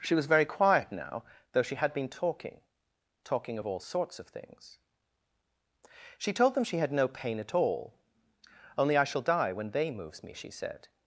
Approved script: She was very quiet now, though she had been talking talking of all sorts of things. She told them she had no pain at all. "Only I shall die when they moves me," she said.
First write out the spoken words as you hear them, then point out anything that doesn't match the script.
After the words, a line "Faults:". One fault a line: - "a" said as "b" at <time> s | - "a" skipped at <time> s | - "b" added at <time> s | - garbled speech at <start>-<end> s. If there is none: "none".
She was very quiet now, though she had been talking talking of all sorts of things. She told them she had no pain at all. "Only I shall die when they moves me," she said.
Faults:
none